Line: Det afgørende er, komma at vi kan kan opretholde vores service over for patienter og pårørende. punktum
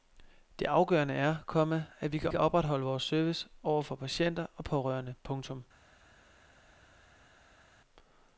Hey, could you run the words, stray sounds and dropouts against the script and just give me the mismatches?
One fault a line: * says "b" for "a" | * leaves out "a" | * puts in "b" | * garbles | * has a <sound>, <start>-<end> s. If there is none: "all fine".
all fine